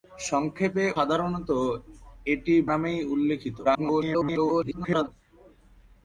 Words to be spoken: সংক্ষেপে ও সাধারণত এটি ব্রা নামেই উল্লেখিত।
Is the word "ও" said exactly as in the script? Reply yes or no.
no